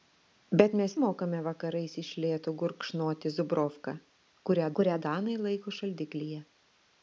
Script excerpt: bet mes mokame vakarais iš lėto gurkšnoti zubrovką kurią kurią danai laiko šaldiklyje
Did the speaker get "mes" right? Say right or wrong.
right